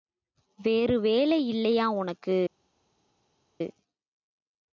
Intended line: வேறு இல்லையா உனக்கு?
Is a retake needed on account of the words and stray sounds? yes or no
yes